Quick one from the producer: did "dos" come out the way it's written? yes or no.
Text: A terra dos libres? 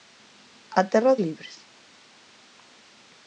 no